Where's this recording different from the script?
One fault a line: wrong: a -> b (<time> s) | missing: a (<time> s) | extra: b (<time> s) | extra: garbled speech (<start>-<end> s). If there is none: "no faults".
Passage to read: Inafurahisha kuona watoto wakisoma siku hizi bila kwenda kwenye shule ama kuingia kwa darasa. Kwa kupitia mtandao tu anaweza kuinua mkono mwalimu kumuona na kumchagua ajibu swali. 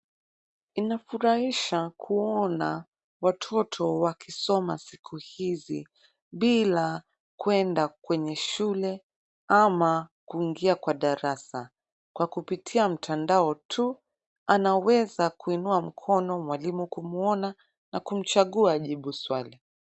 no faults